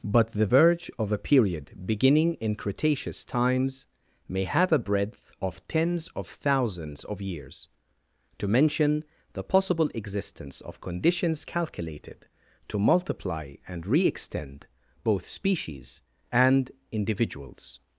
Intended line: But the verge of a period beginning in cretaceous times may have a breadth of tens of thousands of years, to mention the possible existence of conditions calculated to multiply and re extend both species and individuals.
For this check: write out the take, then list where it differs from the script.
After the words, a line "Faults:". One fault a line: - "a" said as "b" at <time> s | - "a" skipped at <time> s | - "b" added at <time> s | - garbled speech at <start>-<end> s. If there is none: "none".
But the verge of a period beginning in cretaceous times may have a breadth of tens of thousands of years, to mention the possible existence of conditions calculated to multiply and re extend both species and individuals.
Faults:
none